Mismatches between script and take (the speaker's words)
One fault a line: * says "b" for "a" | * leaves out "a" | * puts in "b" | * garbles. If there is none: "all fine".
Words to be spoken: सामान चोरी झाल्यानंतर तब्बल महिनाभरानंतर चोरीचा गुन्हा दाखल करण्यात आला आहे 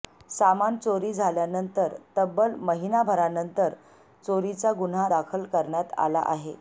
all fine